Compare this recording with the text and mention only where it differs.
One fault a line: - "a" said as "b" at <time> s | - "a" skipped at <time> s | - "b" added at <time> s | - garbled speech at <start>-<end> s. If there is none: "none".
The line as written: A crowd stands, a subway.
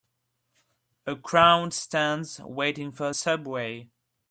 - "waiting for" added at 2.4 s